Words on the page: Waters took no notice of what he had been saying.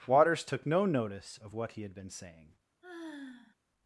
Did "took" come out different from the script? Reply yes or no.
no